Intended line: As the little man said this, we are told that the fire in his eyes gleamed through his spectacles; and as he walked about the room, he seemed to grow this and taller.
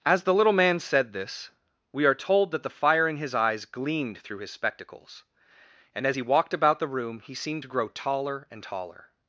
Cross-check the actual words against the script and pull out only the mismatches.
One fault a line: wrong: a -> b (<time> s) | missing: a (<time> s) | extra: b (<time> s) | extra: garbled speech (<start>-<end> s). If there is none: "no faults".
wrong: this -> taller (7.9 s)